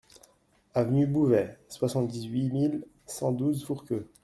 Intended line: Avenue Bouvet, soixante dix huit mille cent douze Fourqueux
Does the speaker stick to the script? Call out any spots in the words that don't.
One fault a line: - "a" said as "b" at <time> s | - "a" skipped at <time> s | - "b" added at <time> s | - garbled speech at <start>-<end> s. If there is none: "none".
none